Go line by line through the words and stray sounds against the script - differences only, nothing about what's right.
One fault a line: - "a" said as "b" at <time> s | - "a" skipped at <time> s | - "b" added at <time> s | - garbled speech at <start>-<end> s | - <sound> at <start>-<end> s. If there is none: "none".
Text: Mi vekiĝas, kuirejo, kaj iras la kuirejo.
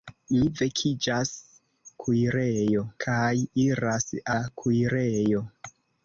none